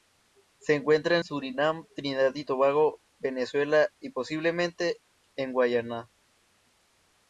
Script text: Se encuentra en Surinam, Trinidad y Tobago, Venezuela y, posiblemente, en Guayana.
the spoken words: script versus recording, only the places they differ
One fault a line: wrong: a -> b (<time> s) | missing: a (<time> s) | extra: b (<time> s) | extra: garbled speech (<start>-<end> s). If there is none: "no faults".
missing: en (1.2 s)